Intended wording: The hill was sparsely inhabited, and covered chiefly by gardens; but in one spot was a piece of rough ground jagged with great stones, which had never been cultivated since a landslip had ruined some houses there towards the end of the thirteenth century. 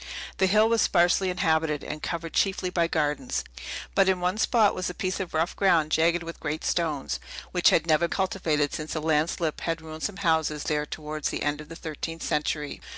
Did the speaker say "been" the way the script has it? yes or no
no